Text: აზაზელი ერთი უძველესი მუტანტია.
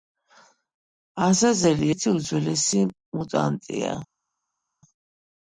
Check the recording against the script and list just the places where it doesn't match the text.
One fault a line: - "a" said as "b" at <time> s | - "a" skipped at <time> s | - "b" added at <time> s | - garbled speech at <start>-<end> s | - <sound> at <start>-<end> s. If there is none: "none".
none